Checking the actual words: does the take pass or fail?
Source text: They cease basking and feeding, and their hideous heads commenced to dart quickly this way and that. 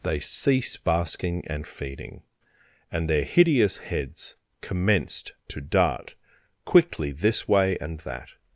pass